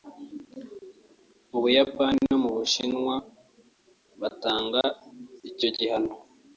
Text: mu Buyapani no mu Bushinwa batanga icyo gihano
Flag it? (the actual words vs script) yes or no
no